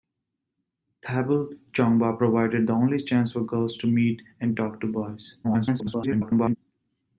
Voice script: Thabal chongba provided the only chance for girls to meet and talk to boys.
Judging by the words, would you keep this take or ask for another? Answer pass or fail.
fail